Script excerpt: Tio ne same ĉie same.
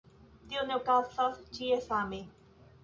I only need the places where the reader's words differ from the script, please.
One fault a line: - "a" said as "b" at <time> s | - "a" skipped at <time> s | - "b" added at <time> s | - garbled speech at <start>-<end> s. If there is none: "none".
- "same" said as "okazas" at 0.8 s